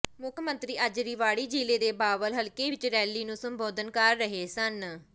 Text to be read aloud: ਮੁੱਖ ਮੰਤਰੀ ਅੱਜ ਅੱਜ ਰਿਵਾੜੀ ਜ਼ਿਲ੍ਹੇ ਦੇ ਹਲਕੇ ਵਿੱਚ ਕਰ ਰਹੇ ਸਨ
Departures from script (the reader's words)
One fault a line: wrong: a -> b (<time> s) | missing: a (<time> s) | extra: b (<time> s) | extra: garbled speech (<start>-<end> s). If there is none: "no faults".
missing: ਅੱਜ (1.0 s)
extra: ਬਾਵਲ (1.9 s)
extra: ਰੈਲੀ ਨੂੰ ਸੰਬੋਧਨ (2.9 s)